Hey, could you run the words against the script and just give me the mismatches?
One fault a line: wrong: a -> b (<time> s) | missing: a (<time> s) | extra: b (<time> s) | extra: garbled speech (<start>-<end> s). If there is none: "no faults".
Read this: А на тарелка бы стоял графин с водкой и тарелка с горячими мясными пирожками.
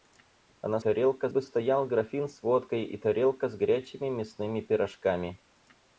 no faults